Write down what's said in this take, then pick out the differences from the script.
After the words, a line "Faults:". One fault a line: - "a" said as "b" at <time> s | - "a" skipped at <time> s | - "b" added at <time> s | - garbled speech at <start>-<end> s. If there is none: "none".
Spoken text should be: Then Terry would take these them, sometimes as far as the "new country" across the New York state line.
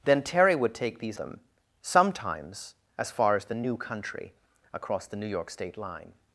Then Terry would take these them, sometimes as far as the "new country" across the New York state line.
Faults:
none